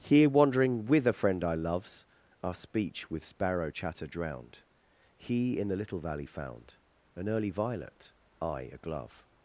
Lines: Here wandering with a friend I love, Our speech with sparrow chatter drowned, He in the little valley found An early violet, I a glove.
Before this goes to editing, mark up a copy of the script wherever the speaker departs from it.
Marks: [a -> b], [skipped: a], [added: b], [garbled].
Here wandering with a friend I [love, -> loves] Our speech with sparrow chatter drowned, He in the little valley found An early violet, I a glove.